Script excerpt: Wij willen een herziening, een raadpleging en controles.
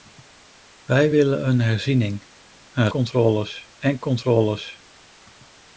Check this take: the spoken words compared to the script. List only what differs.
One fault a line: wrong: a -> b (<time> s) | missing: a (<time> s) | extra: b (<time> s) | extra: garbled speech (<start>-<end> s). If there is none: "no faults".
wrong: raadpleging -> controles (2.9 s)